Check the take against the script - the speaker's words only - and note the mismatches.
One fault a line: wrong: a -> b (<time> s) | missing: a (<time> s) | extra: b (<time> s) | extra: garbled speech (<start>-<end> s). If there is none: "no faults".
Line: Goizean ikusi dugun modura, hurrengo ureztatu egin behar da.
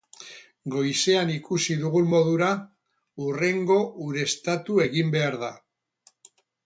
no faults